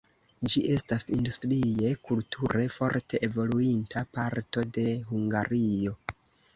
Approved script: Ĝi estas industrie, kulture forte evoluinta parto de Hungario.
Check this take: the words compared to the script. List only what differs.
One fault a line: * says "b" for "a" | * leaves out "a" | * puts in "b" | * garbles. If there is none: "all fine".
all fine